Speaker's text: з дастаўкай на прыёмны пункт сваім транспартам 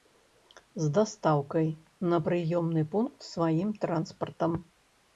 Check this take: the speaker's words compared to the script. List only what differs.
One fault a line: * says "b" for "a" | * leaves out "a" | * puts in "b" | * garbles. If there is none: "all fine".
all fine